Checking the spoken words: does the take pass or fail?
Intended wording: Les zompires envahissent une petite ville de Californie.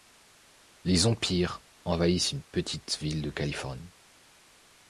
pass